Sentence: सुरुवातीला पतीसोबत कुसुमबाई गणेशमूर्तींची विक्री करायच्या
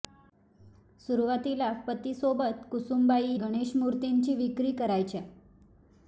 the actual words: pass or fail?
pass